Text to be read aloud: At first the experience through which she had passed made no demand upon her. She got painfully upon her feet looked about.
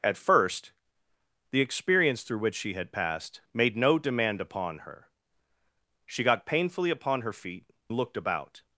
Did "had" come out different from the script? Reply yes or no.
no